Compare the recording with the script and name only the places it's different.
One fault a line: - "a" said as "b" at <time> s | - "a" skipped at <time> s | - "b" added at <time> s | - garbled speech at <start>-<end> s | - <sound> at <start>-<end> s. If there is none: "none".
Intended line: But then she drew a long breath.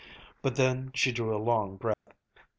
- dropout at 1.9-2.1 s